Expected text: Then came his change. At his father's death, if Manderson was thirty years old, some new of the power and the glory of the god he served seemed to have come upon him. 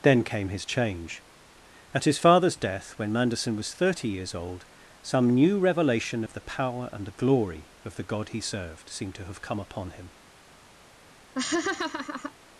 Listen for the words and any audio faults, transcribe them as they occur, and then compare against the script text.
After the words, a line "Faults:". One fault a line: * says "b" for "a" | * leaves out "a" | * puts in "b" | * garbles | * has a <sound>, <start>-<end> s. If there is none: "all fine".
Then came his change. At his father's death, when Manderson was thirty years old, some new revelation of the power and the glory of the god he served seemed to have come upon him.
Faults:
* says "when" for "if"
* puts in "revelation"
* has a laugh, 11.4-12.3 s